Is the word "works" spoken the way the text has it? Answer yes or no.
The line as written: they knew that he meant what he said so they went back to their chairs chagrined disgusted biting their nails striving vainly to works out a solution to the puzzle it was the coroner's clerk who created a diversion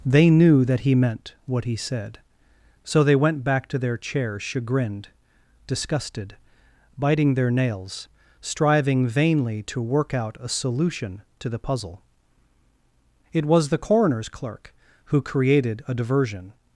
no